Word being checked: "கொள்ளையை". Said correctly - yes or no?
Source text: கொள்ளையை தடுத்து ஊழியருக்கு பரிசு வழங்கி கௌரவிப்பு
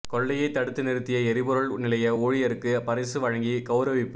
yes